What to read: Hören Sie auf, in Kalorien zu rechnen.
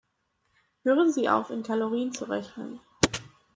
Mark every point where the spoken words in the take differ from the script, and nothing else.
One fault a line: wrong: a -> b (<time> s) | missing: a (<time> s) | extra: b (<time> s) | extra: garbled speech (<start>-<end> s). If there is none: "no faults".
no faults